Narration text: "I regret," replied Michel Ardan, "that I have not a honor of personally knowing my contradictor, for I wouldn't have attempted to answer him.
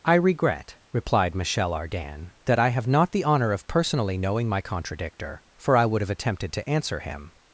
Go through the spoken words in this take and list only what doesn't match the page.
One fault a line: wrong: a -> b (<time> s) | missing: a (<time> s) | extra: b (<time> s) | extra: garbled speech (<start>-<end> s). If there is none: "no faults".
wrong: a -> the (3.1 s)
wrong: wouldn't -> would (5.9 s)